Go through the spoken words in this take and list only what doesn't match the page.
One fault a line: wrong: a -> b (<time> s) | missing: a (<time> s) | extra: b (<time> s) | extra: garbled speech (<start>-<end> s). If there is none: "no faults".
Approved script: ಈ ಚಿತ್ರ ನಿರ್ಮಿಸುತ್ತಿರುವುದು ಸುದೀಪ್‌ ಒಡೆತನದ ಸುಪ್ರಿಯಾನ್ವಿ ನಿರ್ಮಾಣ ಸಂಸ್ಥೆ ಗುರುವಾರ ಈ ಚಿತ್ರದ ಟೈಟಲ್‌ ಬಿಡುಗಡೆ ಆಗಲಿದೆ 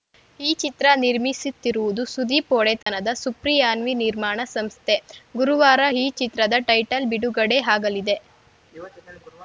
no faults